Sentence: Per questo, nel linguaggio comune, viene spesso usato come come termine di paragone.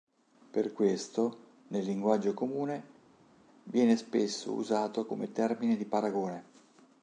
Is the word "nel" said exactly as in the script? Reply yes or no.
yes